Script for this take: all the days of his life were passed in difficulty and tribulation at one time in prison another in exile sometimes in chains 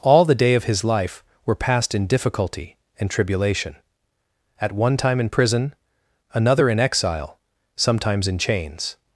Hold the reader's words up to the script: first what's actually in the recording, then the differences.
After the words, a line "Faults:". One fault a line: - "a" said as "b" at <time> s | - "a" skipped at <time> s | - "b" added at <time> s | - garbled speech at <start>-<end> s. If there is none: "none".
all the day of his life were passed in difficulty and tribulation at one time in prison another in exile sometimes in chains
Faults:
- "days" said as "day" at 0.3 s